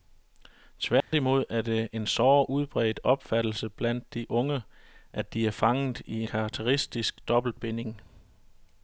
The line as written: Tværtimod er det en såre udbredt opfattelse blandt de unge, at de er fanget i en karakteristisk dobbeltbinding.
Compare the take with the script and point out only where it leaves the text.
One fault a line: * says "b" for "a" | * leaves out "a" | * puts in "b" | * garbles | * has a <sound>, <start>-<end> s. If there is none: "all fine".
* has a dropout, 1.0-1.1 s
* leaves out "en"